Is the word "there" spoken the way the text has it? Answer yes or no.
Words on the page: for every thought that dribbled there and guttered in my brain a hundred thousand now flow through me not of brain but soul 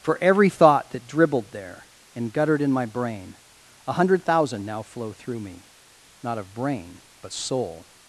yes